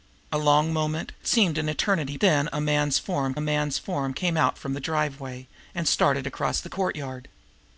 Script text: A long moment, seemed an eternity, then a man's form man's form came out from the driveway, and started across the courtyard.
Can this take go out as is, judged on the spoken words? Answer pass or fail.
pass